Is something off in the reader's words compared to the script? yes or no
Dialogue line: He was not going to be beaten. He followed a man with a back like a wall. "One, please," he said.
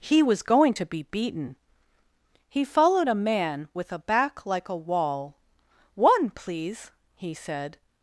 yes